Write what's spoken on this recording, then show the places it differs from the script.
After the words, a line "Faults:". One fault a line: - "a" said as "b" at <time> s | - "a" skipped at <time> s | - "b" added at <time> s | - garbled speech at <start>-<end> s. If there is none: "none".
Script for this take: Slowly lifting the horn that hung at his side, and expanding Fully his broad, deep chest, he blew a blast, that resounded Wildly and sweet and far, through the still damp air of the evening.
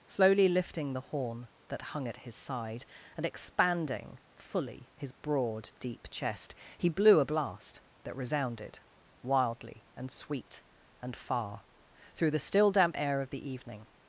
Slowly lifting the horn that hung at his side, and expanding Fully his broad, deep chest, he blew a blast, that resounded Wildly and sweet and far, through the still damp air of the evening.
Faults:
none